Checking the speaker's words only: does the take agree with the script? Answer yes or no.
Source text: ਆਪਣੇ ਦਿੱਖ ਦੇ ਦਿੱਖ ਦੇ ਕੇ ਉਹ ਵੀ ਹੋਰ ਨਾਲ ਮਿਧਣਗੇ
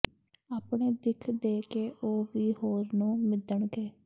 no